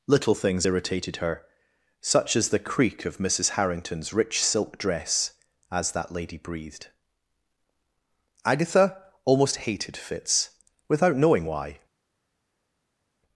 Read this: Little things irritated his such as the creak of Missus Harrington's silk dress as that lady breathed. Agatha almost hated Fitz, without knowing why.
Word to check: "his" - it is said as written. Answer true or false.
false